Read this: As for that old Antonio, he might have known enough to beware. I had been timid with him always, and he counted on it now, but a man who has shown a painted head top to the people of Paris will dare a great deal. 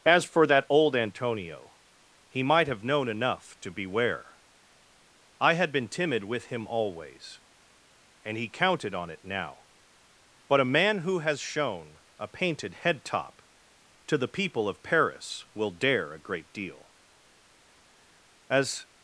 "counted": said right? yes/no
yes